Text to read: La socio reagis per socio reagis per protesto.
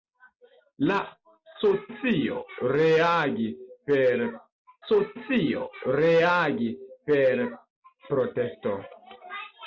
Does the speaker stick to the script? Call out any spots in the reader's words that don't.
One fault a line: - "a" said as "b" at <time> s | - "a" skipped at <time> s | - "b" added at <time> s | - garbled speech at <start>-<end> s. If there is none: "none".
none